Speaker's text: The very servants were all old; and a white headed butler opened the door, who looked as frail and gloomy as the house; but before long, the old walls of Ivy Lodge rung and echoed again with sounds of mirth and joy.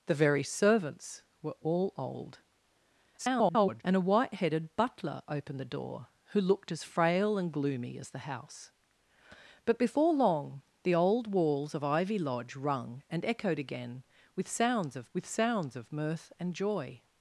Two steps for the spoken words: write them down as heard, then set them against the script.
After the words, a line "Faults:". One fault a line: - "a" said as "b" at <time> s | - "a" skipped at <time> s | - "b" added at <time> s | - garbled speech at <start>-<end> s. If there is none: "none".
The very servants were all old; [garbled] and a white headed butler opened the door, who looked as frail and gloomy as the house; but before long, the old walls of Ivy Lodge rung and echoed again with sounds of with sounds of mirth and joy.
Faults:
- garbled speech at 3.2-3.8 s
- "with sounds of" added at 15.1 s